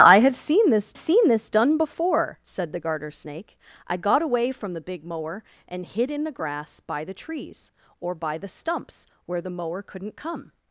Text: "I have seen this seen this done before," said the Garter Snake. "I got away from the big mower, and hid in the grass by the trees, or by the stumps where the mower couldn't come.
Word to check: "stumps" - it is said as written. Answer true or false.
true